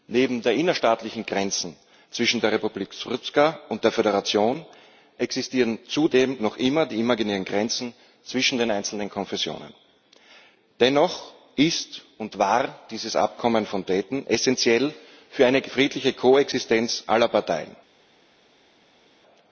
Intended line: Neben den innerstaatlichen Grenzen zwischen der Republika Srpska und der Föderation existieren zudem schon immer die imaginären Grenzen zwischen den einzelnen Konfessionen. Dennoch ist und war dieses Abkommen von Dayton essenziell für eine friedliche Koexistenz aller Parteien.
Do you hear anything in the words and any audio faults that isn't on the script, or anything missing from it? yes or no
yes